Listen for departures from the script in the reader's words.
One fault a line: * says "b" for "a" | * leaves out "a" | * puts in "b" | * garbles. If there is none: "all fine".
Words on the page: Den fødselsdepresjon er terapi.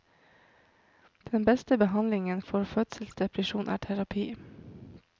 * puts in "beste behandlingen for"